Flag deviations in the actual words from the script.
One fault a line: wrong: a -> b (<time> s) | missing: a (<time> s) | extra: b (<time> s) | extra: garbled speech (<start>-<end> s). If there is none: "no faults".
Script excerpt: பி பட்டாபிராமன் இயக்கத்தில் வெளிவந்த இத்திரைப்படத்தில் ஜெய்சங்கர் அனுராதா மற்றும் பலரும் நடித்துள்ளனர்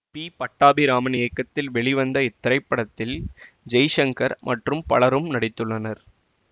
missing: அனுராதா (4.4 s)